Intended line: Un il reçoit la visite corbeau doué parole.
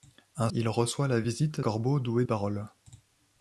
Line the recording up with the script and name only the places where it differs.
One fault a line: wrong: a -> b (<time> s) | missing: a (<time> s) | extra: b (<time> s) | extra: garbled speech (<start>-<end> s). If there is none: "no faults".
no faults